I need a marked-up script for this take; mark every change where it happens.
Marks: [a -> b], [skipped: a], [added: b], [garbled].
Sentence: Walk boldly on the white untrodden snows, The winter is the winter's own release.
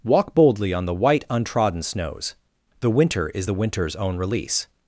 Walk boldly on the white untrodden snows, The winter is the winter's own release.